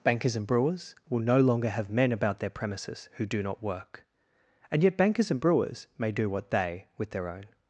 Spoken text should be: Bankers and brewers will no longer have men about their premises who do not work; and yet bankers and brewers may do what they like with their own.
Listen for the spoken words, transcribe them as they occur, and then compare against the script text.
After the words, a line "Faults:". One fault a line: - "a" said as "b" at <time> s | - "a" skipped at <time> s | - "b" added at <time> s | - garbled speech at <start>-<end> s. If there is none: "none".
Bankers and brewers will no longer have men about their premises who do not work; and yet bankers and brewers may do what they with their own.
Faults:
- "like" skipped at 6.9 s